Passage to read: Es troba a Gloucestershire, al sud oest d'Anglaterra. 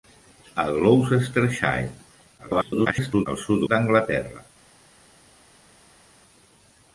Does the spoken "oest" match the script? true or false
false